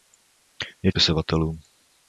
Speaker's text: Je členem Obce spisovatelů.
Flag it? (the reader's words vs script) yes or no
yes